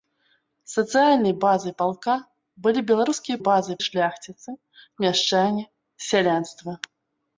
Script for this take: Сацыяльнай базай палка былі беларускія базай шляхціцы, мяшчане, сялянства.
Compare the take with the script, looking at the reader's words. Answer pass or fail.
pass